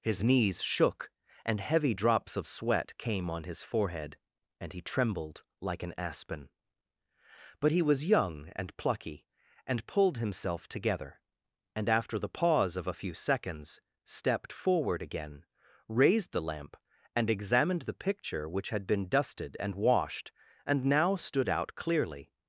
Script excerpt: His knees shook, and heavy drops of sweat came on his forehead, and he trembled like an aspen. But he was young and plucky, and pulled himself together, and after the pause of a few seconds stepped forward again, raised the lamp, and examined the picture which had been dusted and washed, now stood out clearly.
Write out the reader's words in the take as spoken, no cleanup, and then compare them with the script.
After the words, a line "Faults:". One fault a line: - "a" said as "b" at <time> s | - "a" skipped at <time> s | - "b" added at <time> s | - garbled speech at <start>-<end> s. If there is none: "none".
His knees shook, and heavy drops of sweat came on his forehead, and he trembled like an aspen. But he was young and plucky, and pulled himself together, and after the pause of a few seconds stepped forward again, raised the lamp, and examined the picture which had been dusted and washed, and now stood out clearly.
Faults:
- "and" added at 20.7 s